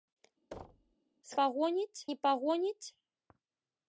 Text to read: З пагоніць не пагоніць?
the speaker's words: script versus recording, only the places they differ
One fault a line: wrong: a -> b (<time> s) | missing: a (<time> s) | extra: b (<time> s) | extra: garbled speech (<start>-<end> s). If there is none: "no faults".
no faults